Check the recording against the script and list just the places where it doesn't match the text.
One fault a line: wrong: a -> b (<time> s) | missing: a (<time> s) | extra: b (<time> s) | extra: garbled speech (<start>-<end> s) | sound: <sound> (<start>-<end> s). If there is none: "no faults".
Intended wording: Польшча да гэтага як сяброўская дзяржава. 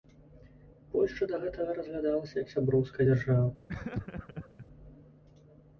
extra: разглядалася (1.8 s)
sound: laugh (3.7-4.7 s)